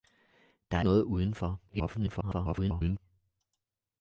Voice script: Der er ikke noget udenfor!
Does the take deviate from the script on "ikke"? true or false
true